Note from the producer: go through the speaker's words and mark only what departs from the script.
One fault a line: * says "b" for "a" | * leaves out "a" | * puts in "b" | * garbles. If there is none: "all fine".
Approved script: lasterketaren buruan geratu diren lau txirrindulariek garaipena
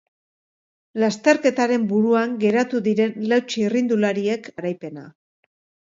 all fine